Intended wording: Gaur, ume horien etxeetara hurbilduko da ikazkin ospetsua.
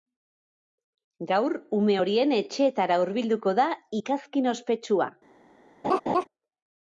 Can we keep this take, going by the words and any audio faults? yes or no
no